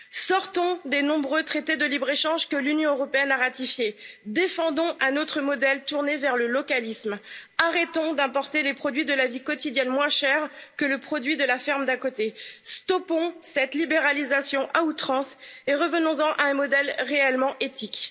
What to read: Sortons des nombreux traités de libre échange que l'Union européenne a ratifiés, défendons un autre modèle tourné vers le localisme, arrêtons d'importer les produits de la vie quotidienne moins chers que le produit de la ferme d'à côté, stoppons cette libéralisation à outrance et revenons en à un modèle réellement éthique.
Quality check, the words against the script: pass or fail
pass